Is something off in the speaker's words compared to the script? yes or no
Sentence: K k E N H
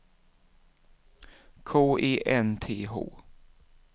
yes